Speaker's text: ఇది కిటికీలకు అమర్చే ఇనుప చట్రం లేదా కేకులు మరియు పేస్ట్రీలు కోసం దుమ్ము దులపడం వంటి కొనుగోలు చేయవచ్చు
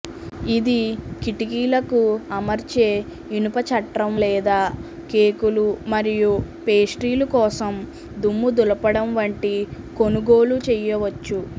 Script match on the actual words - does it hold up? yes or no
yes